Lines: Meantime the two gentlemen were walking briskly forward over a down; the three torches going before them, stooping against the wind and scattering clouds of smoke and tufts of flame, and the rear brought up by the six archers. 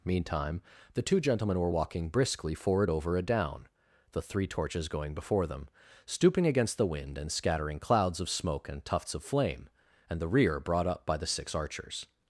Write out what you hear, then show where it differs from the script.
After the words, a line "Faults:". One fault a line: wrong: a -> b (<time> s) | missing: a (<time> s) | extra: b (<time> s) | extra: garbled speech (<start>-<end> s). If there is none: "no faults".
Meantime the two gentlemen were walking briskly forward over a down; the three torches going before them, stooping against the wind and scattering clouds of smoke and tufts of flame, and the rear brought up by the six archers.
Faults:
no faults